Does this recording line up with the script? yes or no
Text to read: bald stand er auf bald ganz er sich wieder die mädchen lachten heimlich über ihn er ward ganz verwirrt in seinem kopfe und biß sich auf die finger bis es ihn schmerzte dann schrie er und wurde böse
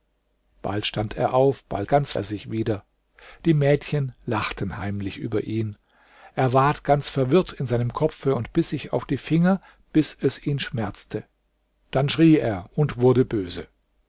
yes